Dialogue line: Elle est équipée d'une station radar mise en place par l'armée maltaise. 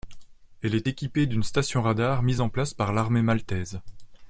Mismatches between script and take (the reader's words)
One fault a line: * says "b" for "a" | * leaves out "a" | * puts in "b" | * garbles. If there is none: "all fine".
all fine